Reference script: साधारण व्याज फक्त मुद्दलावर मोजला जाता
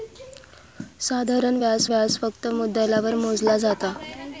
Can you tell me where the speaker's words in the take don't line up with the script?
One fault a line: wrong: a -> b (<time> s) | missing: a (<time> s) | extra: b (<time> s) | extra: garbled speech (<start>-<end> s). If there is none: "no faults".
extra: व्याज (1.8 s)